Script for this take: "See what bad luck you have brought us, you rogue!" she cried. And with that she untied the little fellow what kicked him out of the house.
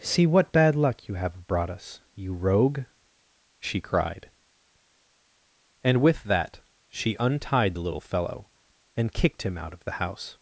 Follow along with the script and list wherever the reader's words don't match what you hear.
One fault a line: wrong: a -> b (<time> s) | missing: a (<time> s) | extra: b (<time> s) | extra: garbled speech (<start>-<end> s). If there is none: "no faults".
wrong: what -> and (9.0 s)